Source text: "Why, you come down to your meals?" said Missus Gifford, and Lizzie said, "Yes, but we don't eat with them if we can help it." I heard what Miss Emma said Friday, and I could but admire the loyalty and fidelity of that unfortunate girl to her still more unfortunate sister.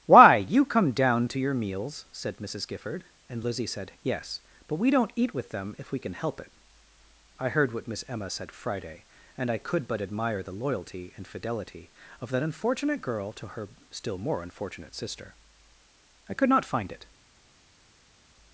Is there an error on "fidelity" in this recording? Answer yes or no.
no